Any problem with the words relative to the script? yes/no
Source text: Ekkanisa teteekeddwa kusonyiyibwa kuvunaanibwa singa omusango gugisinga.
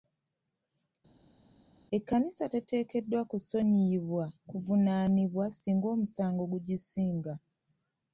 no